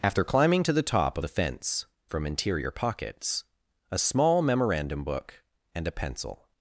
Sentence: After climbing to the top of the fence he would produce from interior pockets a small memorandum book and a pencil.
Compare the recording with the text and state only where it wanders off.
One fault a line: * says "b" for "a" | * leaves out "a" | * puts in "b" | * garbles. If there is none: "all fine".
* leaves out "of"
* leaves out "he would produce"